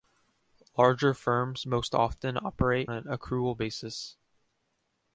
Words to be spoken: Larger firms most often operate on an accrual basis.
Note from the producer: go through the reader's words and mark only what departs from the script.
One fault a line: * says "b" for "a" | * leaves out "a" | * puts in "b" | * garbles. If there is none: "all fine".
* leaves out "on"